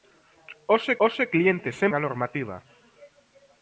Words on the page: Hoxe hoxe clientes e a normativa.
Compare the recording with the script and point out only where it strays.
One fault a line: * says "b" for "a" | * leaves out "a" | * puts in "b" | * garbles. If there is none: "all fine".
all fine